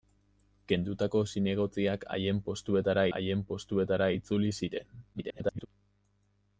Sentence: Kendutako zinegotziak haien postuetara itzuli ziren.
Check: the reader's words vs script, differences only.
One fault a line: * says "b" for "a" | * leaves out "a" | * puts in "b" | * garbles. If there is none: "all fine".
* puts in "haien postuetara"
* garbles